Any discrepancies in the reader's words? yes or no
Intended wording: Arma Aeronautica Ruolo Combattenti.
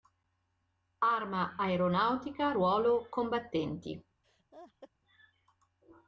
no